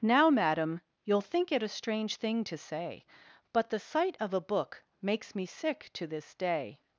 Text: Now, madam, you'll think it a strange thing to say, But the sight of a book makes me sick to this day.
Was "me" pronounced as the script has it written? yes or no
yes